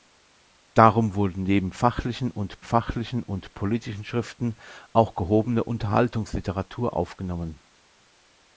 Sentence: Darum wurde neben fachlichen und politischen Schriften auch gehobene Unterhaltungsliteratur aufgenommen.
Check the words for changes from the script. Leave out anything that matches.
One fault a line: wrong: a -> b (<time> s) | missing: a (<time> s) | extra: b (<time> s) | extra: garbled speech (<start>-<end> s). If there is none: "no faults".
extra: fachlichen und (2.6 s)